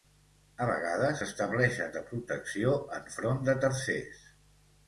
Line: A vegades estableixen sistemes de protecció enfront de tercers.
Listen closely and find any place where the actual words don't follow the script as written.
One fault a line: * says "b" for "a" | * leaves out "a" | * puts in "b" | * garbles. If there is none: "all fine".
* leaves out "sistemes"